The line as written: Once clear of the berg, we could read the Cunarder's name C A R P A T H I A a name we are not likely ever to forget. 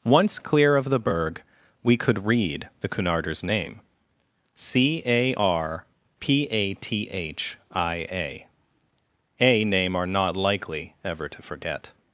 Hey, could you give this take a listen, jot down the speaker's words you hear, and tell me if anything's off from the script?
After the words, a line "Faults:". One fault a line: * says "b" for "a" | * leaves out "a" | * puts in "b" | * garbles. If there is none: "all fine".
Once clear of the berg, we could read the Cunarder's name C A R P A T H I A a name are not likely ever to forget.
Faults:
* leaves out "we"